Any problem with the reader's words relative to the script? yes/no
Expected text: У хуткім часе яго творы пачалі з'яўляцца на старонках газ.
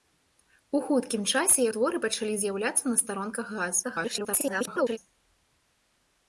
yes